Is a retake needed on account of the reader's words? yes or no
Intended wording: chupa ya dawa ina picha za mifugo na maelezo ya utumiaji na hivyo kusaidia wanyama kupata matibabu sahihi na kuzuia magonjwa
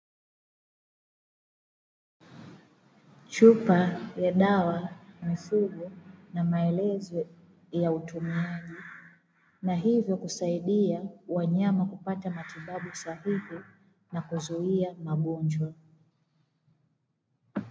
yes